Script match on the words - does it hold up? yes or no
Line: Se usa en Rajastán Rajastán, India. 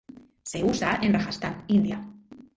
no